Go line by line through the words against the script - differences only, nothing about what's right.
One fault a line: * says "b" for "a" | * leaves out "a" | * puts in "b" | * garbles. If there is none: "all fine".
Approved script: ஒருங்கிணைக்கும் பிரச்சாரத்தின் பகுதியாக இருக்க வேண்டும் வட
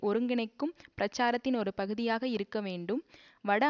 * puts in "ஒரு"